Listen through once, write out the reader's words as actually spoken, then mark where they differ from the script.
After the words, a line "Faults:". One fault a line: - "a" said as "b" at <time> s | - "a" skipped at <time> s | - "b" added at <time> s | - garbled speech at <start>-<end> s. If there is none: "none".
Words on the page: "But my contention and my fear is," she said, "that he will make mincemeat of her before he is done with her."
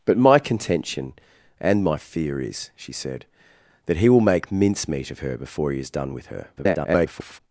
"But my contention and my fear is," she said, "that he will make mincemeat of her before he is done with her." [garbled]
Faults:
- garbled speech at 6.6-7.4 s